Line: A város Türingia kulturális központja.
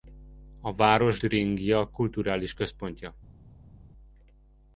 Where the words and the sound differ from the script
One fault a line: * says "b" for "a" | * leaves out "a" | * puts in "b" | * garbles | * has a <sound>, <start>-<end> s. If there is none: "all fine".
all fine